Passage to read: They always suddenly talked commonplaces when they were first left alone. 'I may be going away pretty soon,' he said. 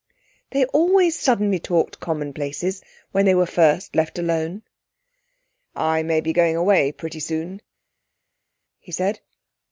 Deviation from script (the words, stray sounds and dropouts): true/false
false